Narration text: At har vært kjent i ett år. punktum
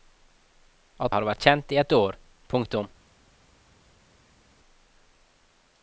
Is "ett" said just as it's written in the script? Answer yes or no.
yes